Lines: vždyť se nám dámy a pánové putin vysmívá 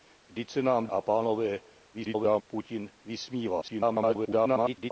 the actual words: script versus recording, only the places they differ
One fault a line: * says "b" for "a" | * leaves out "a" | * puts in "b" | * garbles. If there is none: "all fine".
* leaves out "dámy"
* garbles
* garbles